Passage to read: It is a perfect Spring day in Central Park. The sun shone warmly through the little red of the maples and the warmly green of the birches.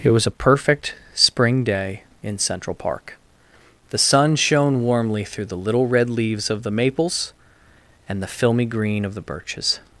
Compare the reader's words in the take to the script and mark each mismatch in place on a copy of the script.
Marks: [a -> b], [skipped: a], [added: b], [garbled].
It [is -> was] a perfect Spring day in Central Park. The sun shone warmly through the little red [added: leaves] of the maples and the [warmly -> filmy] green of the birches.